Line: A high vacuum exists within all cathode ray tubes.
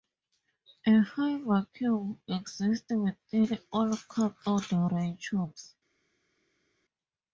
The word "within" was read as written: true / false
true